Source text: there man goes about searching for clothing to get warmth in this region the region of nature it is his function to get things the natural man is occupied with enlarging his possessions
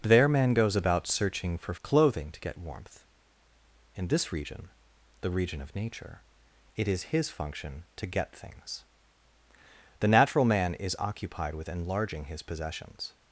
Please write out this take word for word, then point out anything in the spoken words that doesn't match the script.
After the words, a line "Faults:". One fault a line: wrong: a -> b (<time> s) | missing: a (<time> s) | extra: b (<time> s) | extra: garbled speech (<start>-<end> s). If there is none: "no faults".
there man goes about searching for clothing to get warmth in this region the region of nature it is his function to get things the natural man is occupied with enlarging his possessions
Faults:
no faults